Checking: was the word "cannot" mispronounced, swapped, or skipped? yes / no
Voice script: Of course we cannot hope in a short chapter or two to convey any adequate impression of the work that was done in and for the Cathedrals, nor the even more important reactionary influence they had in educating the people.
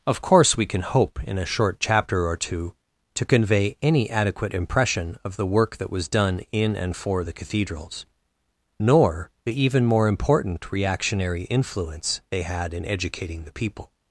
yes